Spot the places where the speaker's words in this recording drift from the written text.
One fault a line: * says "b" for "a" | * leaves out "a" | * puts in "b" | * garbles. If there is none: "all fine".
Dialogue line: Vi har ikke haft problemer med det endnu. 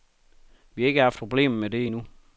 all fine